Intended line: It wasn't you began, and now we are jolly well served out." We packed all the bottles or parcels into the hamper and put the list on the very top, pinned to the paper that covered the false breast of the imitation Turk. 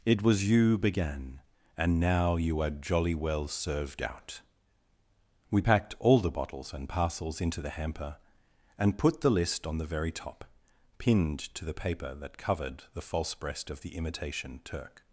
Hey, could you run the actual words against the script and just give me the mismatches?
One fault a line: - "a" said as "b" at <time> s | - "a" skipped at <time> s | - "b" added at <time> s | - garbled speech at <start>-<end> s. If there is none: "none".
- "wasn't" said as "was" at 0.2 s
- "we" said as "you" at 2.4 s
- "or" said as "and" at 6.7 s